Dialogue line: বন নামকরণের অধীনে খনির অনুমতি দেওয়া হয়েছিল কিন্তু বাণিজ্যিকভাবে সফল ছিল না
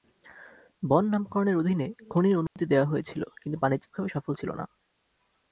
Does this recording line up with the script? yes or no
yes